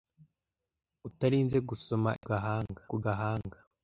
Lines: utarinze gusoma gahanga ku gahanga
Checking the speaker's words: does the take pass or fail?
pass